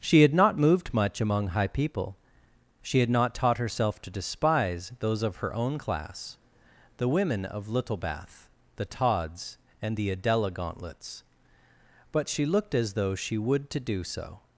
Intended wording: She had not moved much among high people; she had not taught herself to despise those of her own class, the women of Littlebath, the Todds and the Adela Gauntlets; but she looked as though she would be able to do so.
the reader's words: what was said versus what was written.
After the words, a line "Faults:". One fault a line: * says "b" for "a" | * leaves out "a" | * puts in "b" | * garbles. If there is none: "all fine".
She had not moved much among high people; she had not taught herself to despise those of her own class, the women of Littlebath, the Todds and the Adela Gauntlets; but she looked as though she would to do so.
Faults:
* leaves out "be able"